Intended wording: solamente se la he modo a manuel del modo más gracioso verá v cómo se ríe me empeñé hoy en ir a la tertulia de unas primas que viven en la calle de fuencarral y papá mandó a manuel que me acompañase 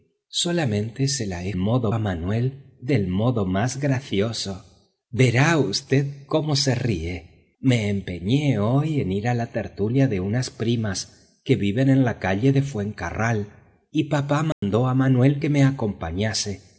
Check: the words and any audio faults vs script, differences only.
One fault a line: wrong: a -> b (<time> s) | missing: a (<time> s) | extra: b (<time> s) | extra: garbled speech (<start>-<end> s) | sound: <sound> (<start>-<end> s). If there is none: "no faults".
sound: dropout (14.5-14.6 s)